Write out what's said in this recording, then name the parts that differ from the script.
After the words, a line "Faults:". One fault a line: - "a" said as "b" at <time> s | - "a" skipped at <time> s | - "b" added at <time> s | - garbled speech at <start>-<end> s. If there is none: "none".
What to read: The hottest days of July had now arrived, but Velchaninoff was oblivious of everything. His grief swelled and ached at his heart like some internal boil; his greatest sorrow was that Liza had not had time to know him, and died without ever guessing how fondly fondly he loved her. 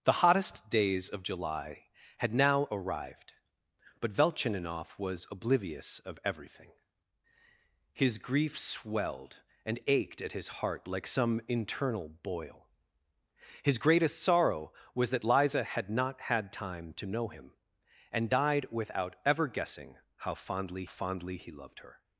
The hottest days of July had now arrived, but Velchaninoff was oblivious of everything. His grief swelled and ached at his heart like some internal boil; his greatest sorrow was that Liza had not had time to know him, and died without ever guessing how fondly fondly he loved her.
Faults:
none